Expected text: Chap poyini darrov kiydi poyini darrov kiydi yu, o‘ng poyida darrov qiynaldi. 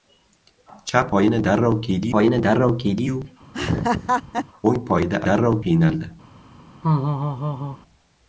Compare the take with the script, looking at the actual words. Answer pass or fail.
pass